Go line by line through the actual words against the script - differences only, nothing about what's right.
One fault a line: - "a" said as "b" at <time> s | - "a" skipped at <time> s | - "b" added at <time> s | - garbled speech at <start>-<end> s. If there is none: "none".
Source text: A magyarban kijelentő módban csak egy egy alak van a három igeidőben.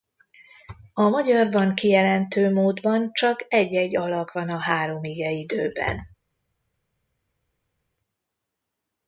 none